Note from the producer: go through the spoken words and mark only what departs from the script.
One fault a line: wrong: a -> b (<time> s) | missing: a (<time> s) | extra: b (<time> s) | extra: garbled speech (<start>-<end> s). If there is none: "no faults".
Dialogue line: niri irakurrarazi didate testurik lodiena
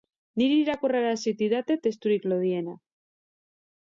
no faults